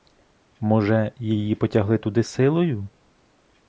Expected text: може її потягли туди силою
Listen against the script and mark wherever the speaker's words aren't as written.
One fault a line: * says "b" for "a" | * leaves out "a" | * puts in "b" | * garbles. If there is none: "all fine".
all fine